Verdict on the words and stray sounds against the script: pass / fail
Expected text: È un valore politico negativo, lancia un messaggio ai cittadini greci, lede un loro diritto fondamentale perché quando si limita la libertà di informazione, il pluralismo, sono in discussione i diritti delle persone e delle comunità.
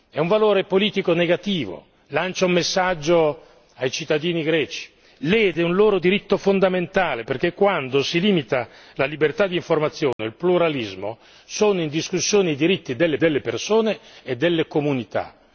fail